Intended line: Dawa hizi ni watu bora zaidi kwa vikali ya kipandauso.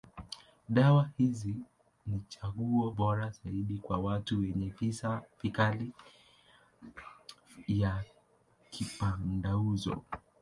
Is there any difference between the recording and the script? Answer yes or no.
yes